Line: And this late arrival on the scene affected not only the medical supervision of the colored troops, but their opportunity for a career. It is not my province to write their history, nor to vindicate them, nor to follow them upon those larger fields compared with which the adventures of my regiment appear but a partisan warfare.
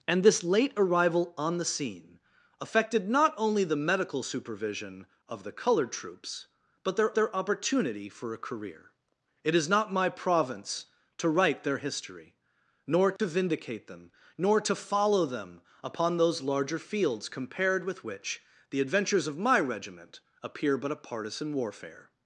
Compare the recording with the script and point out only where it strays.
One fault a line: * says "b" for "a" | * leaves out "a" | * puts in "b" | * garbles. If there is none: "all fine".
* puts in "their"